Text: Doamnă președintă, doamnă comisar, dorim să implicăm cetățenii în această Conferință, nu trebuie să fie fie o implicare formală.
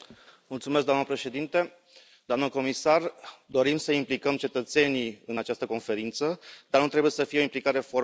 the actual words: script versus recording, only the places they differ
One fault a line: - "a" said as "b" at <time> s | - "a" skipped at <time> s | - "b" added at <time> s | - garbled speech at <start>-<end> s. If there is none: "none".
- "dar" added at 6.7 s
- "fie" skipped at 7.4 s